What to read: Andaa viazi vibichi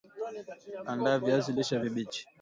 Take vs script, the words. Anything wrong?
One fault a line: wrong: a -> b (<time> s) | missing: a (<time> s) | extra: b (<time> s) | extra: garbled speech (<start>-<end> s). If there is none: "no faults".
extra: lishe (1.6 s)